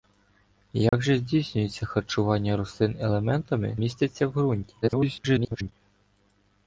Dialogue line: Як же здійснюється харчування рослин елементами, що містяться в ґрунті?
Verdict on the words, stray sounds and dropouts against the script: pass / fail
fail